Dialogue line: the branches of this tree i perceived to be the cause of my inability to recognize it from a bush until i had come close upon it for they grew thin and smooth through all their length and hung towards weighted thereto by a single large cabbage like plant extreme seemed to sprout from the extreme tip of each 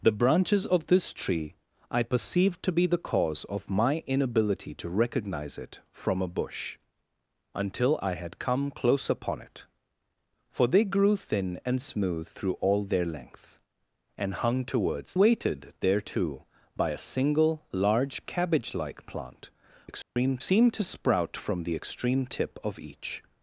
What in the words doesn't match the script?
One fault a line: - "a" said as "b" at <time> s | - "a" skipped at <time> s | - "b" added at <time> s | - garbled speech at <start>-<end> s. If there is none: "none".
none